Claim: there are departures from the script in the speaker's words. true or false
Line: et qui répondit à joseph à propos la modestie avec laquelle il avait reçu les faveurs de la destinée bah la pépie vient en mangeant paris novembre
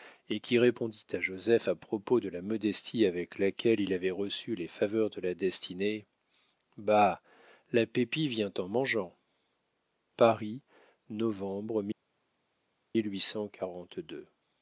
true